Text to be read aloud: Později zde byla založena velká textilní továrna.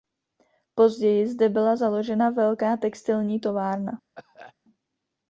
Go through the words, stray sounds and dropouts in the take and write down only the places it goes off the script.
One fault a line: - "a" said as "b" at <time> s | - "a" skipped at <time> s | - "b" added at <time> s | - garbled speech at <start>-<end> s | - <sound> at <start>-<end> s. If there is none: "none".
- cough at 4.2-4.5 s